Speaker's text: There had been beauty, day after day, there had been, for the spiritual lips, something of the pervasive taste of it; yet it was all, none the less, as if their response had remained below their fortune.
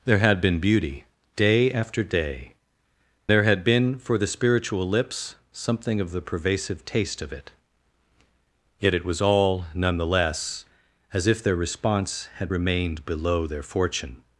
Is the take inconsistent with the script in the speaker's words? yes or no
no